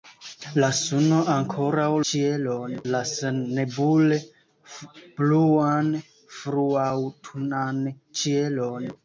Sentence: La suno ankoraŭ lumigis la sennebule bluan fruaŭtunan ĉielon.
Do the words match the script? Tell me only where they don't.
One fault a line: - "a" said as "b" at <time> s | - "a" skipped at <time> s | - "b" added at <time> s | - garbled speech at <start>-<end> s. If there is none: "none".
- "lumigis" said as "ĉielon" at 2.1 s